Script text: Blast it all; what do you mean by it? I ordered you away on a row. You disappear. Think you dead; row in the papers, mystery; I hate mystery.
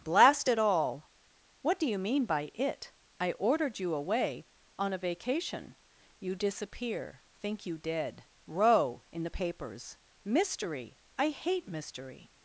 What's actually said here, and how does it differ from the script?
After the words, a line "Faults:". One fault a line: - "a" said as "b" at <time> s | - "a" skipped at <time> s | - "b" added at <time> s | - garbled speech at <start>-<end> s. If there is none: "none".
Blast it all; what do you mean by it? I ordered you away on a vacation. You disappear. Think you dead; row in the papers, mystery; I hate mystery.
Faults:
- "row" said as "vacation" at 5.0 s